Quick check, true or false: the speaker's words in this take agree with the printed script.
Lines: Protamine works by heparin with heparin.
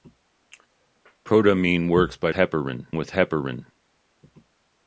true